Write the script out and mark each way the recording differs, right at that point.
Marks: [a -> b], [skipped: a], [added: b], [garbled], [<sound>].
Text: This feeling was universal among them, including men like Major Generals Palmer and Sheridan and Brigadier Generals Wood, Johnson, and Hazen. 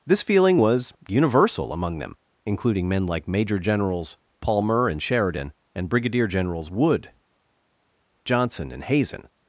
This feeling was universal among them, including men like Major Generals Palmer and Sheridan and Brigadier Generals Wood, Johnson, and Hazen.